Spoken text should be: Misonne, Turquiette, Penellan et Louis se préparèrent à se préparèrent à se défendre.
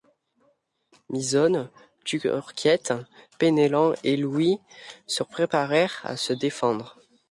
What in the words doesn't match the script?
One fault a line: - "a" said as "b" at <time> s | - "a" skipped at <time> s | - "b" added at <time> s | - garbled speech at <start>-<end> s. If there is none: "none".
- "préparèrent à se" skipped at 6.3 s